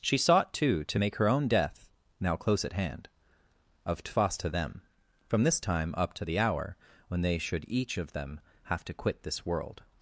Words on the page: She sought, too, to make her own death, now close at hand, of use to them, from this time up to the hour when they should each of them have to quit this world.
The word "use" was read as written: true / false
false